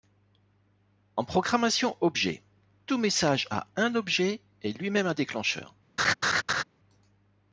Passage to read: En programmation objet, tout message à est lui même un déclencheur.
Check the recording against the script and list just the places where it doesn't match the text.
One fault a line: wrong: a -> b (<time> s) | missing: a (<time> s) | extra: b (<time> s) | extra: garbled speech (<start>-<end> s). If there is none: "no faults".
extra: un objet (3.8 s)